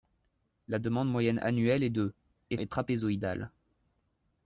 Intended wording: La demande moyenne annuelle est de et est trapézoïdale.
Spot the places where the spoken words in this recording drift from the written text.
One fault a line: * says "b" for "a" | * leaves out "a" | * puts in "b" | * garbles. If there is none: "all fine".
all fine